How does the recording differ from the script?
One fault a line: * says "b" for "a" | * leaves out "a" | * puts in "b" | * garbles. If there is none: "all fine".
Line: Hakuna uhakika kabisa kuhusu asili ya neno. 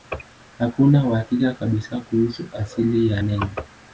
all fine